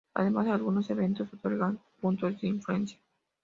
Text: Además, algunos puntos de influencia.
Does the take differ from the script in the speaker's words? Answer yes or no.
yes